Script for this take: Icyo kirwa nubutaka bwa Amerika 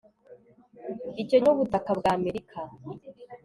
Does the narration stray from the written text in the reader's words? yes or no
yes